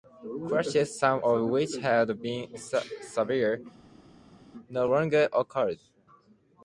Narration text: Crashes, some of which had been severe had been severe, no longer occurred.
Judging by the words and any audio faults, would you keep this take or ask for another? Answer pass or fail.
fail